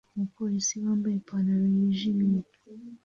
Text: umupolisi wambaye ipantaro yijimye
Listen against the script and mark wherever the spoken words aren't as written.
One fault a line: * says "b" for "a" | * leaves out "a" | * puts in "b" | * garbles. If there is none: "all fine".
all fine